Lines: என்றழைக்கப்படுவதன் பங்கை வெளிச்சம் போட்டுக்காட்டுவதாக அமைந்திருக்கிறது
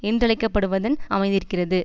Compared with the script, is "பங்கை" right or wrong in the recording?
wrong